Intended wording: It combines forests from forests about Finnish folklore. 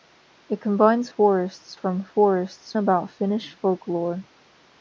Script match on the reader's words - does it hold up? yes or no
yes